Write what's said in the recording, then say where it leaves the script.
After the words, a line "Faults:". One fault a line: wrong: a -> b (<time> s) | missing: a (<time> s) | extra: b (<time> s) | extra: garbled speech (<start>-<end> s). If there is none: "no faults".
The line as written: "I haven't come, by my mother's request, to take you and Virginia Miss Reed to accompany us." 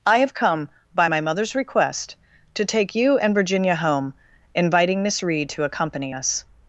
"I have come, by my mother's request, to take you and Virginia home, inviting Miss Reed to accompany us."
Faults:
wrong: haven't -> have (0.2 s)
extra: home inviting (3.7 s)